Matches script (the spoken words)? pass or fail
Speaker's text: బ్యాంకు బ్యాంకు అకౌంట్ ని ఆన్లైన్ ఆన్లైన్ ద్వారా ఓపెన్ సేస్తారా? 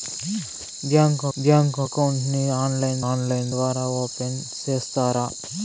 pass